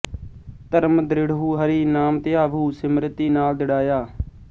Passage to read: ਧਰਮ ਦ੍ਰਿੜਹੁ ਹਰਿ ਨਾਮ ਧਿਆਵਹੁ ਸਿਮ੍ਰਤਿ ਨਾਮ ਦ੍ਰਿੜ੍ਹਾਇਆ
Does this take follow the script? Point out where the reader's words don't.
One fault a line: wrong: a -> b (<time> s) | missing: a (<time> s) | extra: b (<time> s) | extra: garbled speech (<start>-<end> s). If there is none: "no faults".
no faults